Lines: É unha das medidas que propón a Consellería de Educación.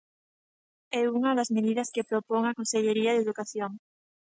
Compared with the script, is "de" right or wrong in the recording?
right